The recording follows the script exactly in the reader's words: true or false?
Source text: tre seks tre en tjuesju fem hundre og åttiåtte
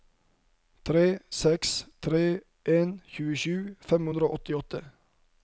true